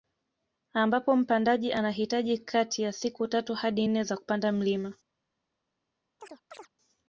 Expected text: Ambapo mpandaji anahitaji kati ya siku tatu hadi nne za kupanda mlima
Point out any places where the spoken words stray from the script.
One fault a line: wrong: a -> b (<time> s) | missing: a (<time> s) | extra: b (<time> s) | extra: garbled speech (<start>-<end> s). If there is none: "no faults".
no faults